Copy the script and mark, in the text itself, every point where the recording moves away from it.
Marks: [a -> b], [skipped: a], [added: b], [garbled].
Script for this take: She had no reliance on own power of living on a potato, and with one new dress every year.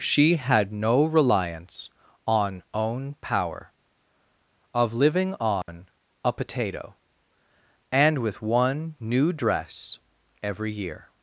She had no reliance on own power of living on a potato, and with one new dress every year.